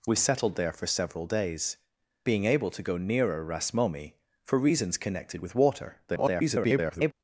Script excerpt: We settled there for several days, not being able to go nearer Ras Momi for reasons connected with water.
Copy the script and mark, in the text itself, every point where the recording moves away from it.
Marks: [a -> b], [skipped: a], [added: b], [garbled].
We settled there for several days, [skipped: not] being able to go nearer Ras Momi for reasons connected with water. [garbled]